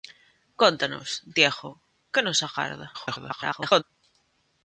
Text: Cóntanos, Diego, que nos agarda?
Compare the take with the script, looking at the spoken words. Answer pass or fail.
fail